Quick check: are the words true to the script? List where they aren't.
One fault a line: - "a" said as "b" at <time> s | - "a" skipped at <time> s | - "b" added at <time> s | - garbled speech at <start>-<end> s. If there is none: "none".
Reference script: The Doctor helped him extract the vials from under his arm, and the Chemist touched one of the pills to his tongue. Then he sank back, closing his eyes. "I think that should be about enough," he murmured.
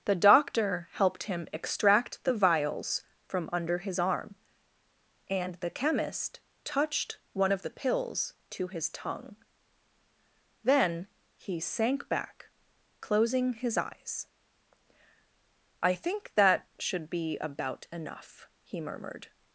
none